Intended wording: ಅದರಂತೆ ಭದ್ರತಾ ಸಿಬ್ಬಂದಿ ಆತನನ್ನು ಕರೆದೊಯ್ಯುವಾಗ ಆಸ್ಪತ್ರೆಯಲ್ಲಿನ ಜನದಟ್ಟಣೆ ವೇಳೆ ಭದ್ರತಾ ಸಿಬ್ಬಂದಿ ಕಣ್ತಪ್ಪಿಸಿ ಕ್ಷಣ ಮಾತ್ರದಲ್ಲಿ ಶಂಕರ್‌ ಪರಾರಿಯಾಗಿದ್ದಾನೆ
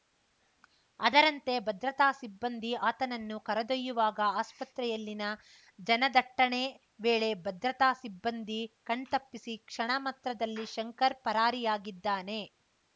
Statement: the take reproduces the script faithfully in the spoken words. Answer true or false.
true